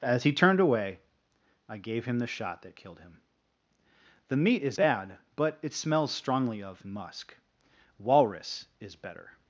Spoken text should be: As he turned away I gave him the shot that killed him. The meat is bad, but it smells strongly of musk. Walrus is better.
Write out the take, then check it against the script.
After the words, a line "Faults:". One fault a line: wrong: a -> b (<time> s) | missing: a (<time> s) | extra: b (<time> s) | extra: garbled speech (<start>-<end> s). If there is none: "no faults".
As he turned away I gave him the shot that killed him. The meat is bad, but it smells strongly of musk. Walrus is better.
Faults:
no faults